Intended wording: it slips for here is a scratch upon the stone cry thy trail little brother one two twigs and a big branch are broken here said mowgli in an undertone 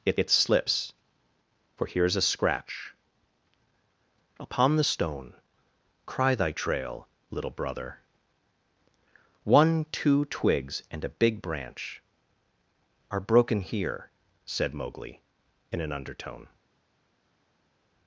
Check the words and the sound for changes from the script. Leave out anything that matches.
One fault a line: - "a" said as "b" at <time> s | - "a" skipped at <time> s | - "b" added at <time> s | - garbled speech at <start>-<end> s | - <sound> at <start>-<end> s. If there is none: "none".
- "it" added at 0.1 s